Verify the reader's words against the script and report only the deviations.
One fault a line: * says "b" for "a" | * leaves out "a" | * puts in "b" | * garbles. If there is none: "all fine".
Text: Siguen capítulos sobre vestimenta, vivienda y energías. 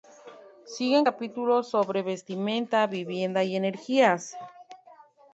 all fine